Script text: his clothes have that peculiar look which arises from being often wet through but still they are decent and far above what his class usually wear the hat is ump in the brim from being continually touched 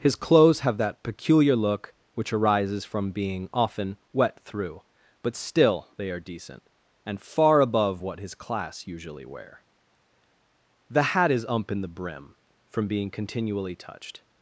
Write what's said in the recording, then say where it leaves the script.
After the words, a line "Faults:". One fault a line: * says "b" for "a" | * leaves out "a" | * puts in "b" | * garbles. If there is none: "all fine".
his clothes have that peculiar look which arises from being often wet through but still they are decent and far above what his class usually wear the hat is ump in the brim from being continually touched
Faults:
all fine